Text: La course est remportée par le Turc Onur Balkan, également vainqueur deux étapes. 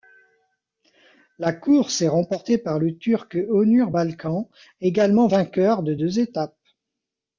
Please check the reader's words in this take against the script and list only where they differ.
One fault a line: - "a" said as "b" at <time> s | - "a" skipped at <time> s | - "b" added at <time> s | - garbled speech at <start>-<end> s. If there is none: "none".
- "de" added at 5.8 s